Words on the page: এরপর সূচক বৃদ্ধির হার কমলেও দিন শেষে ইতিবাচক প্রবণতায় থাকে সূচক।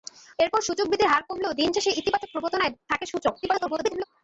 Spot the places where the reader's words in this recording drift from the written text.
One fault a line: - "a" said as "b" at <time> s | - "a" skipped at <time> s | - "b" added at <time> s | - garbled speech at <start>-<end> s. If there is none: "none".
- garbled speech at 3.4-4.0 s